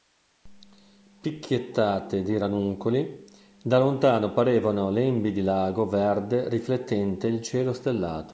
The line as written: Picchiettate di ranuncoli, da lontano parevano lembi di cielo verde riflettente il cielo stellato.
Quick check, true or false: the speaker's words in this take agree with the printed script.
false